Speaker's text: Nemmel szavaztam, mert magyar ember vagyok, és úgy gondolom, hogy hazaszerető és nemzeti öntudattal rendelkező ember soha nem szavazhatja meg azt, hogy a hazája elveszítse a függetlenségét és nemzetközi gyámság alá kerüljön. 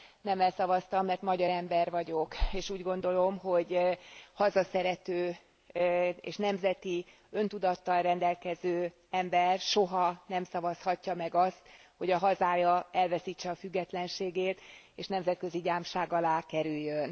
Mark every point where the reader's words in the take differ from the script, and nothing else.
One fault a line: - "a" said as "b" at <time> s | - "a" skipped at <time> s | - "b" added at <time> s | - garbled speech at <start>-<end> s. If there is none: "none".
none